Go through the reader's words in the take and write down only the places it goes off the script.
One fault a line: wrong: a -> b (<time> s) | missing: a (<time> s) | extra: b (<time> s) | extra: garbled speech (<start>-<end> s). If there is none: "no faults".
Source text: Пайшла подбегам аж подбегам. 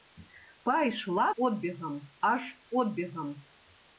no faults